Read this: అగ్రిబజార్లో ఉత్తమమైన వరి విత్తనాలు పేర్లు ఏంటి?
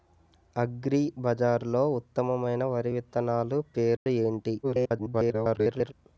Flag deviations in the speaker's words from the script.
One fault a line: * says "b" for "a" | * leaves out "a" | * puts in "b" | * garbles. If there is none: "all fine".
* garbles